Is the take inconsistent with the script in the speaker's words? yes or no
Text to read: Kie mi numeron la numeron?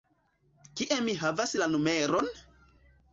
yes